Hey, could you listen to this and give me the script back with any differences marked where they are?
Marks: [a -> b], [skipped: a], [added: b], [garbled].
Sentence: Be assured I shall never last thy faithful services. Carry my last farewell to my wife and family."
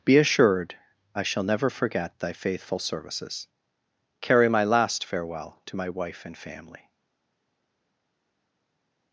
Be assured I shall never [last -> forget] thy faithful services. Carry my last farewell to my wife and family."